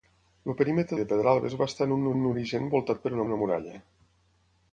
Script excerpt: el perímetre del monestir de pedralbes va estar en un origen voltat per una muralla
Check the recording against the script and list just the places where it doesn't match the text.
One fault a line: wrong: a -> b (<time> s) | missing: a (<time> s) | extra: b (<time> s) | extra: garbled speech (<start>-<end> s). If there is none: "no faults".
missing: del monestir (1.0 s)
extra: un (2.2 s)
extra: una (3.3 s)